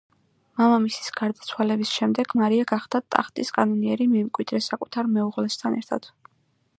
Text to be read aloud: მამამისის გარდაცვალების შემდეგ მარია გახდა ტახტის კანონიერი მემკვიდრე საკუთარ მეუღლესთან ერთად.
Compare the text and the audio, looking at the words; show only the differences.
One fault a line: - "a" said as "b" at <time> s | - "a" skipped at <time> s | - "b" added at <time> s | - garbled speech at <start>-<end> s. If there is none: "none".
none